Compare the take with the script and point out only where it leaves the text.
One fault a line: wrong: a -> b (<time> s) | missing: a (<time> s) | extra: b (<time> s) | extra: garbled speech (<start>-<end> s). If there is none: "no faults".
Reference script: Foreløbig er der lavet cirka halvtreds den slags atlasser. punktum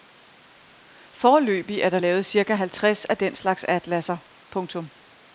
extra: af (3.1 s)